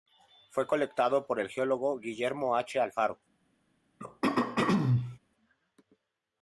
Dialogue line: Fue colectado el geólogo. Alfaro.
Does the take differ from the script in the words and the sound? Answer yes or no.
yes